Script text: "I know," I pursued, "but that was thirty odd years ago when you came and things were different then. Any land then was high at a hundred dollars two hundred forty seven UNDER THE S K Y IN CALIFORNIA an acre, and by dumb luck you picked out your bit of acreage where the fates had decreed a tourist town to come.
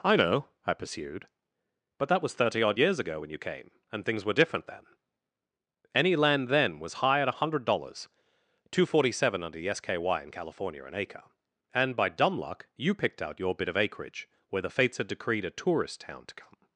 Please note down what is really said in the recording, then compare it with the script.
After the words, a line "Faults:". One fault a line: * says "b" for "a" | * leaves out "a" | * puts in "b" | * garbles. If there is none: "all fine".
"I know," I pursued, "but that was thirty odd years ago when you came and things were different then. Any land then was high at a hundred dollars two forty seven UNDER THE S K Y IN CALIFORNIA an acre, and by dumb luck you picked out your bit of acreage where the fates had decreed a tourist town to come.
Faults:
* leaves out "hundred"